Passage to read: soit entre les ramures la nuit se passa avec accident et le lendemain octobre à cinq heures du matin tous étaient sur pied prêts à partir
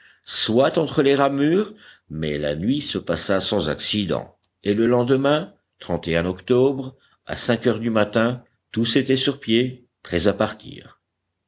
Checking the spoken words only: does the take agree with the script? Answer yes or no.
no